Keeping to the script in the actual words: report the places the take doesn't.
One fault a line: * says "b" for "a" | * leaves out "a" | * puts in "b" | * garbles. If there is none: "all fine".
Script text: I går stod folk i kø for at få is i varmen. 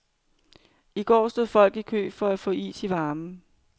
all fine